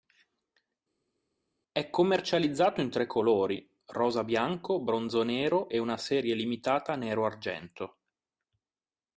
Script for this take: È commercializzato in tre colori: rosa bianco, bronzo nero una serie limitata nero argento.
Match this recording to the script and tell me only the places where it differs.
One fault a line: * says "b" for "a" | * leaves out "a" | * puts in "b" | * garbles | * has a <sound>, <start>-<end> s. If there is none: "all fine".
* puts in "e"